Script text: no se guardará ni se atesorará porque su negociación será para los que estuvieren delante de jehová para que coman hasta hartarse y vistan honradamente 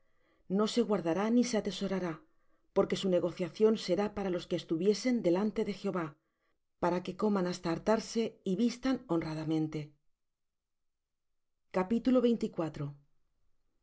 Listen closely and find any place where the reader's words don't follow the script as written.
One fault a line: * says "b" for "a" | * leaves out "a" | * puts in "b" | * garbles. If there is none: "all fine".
all fine